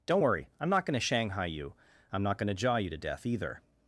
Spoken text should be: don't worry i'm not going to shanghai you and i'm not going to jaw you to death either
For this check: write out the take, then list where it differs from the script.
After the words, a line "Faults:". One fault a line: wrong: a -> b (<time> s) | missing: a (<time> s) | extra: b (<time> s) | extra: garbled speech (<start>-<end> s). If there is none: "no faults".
don't worry i'm not going to shanghai you i'm not going to jaw you to death either
Faults:
missing: and (1.7 s)